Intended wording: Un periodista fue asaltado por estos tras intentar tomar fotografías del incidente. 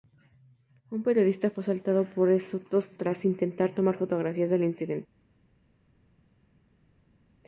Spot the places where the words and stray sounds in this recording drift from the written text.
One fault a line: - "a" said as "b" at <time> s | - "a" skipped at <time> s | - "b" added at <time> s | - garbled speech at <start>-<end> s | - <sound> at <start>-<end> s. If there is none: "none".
none